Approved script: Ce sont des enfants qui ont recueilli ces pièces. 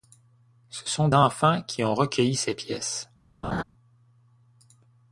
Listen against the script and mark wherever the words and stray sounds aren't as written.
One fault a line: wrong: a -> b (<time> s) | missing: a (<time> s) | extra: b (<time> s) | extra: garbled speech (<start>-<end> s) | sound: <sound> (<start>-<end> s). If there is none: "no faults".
missing: des (1.1 s)
sound: laugh (3.4-3.6 s)